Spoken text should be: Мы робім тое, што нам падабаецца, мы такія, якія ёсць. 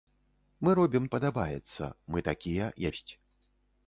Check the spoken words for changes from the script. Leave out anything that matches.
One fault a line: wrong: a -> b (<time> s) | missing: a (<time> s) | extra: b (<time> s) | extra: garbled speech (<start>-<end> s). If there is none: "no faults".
missing: тое што нам (1.1 s)
missing: якія (2.7 s)